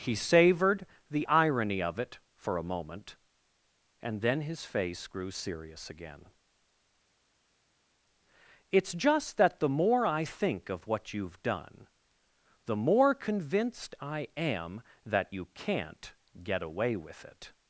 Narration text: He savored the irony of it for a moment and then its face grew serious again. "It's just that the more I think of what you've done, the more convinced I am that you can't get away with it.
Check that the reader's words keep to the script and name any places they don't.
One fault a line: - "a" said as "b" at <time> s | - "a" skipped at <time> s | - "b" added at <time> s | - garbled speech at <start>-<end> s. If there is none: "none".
- "its" said as "his" at 4.4 s